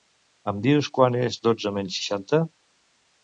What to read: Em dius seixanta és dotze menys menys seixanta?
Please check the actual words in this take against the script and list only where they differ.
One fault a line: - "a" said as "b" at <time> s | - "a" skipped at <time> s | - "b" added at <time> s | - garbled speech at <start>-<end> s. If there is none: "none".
- "seixanta" said as "quant" at 1.0 s
- "menys" skipped at 2.0 s